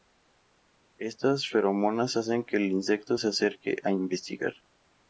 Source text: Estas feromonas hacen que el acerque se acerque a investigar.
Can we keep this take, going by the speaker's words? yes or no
no